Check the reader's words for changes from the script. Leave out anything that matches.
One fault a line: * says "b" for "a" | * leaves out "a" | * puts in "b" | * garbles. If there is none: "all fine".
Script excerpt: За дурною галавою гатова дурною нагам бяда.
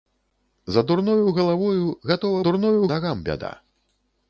all fine